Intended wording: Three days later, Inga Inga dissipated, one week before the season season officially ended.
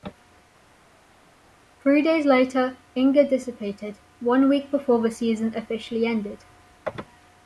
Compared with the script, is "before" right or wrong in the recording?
right